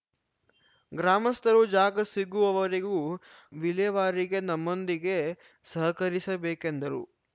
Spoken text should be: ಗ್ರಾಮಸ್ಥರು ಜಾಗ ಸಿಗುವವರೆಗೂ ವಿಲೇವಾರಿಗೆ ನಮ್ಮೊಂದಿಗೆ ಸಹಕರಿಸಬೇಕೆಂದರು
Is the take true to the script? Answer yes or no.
yes